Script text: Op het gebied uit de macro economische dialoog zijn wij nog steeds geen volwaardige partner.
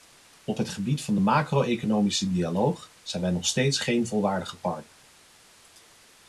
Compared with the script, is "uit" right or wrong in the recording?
wrong